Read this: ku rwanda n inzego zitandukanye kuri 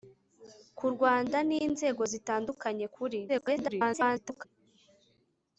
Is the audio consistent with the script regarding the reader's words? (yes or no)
no